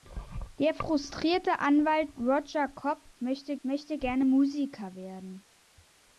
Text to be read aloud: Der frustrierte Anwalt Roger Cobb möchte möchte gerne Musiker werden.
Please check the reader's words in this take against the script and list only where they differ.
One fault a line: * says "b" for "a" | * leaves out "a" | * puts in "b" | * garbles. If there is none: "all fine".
all fine